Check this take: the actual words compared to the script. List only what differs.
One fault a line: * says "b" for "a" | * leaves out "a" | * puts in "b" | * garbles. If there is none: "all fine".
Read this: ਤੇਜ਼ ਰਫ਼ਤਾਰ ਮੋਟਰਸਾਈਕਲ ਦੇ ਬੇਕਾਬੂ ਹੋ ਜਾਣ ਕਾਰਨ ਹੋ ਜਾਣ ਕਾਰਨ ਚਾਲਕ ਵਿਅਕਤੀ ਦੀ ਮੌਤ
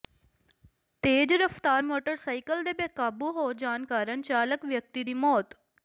* leaves out "ਹੋ ਜਾਣ ਕਾਰਨ"